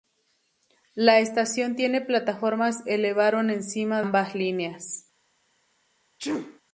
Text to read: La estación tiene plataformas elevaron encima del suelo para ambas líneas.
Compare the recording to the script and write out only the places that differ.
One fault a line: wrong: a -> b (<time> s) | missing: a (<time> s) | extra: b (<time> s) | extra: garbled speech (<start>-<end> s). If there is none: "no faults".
missing: del suelo para (4.0 s)